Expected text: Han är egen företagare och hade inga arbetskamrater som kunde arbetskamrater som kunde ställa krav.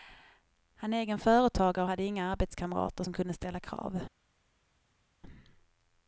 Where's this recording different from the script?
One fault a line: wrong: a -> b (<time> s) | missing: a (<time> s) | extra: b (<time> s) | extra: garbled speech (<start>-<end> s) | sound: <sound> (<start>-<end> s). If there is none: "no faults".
missing: arbetskamrater som kunde (3.3 s)